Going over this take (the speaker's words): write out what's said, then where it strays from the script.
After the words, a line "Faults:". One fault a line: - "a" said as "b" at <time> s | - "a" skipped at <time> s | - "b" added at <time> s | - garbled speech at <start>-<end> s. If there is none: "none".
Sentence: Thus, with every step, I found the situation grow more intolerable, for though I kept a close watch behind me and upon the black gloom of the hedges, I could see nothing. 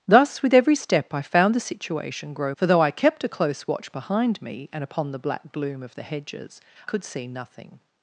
Thus, with every step, I found the situation grow for though I kept a close watch behind me and upon the black gloom of the hedges, could see nothing.
Faults:
- "more intolerable" skipped at 2.5 s
- "I" skipped at 6.6 s